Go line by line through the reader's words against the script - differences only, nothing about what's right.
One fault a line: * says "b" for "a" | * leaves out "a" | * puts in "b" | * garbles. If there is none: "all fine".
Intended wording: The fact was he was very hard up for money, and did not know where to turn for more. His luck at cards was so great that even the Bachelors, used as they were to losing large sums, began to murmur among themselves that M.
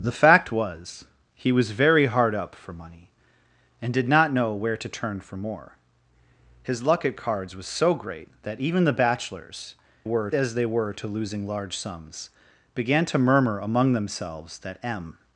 * says "were" for "used"